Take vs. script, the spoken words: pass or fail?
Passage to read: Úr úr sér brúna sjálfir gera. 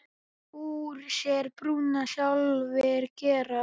fail